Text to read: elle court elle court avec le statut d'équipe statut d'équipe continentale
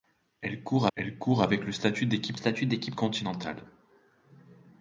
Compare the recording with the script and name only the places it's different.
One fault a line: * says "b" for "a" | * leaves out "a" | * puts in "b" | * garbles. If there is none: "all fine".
all fine